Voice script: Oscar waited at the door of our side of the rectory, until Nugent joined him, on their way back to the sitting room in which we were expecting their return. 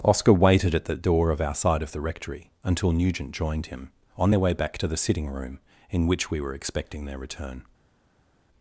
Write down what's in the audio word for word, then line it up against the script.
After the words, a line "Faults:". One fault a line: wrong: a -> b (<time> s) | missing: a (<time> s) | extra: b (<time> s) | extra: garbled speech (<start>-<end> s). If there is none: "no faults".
Oscar waited at the door of our side of the rectory, until Nugent joined him, on their way back to the sitting room in which we were expecting their return.
Faults:
no faults